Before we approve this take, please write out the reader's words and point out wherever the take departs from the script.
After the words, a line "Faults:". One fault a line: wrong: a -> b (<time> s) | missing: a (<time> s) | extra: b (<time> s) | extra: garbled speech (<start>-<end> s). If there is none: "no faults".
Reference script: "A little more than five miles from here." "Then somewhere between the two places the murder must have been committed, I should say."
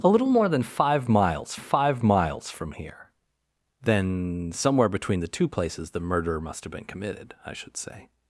"A little more than five miles five miles from here." "Then somewhere between the two places the murder must have been committed, I should say."
Faults:
extra: five miles (1.6 s)